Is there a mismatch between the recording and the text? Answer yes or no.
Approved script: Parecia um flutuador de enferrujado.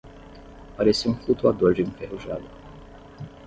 no